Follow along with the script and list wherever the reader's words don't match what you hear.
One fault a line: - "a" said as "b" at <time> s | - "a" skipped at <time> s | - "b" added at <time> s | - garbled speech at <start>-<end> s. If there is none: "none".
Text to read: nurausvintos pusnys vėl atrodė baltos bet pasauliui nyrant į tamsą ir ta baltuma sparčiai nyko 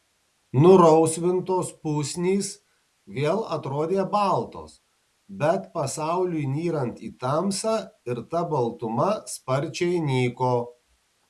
none